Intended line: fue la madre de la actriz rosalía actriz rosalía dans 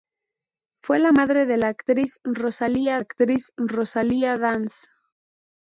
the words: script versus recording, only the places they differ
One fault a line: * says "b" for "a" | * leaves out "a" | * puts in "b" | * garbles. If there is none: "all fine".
all fine